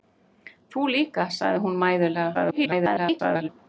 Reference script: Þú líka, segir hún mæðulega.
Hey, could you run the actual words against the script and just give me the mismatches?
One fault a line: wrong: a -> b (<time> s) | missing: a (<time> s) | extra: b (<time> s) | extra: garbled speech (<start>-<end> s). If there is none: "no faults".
extra: garbled speech (2.3-3.5 s)